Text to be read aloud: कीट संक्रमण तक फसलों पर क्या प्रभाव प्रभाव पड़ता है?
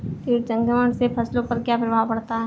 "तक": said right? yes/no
no